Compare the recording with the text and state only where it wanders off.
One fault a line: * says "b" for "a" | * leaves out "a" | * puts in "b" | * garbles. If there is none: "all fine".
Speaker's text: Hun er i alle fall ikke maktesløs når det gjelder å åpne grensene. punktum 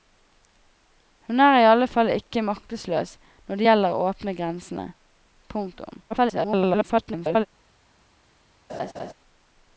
* garbles